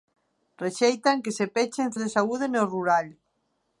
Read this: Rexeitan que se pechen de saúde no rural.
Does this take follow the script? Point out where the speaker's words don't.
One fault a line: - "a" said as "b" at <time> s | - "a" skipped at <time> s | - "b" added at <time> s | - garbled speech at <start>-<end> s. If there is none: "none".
none